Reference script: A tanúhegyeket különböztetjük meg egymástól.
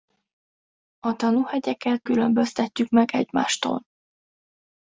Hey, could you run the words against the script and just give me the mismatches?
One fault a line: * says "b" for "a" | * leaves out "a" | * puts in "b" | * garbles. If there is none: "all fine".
all fine